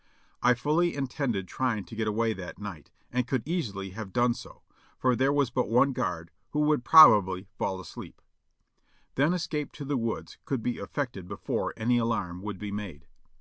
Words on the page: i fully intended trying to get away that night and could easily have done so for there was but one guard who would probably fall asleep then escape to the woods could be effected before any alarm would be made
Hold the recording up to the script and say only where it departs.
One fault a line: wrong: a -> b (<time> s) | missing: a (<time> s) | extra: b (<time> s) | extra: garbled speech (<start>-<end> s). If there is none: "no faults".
no faults